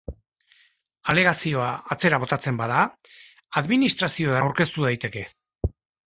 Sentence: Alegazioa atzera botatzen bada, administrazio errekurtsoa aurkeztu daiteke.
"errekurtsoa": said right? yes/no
no